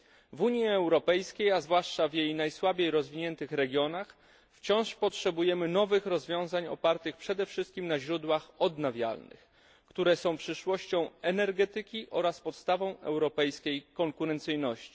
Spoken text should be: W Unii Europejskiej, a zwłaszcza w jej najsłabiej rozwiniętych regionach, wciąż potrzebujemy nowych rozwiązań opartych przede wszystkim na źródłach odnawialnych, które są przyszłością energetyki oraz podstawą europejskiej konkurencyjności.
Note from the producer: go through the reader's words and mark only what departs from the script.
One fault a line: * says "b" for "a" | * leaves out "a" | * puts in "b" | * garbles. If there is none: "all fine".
all fine